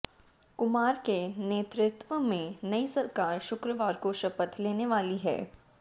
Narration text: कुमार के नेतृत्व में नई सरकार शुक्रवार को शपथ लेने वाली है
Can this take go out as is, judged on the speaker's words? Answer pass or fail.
pass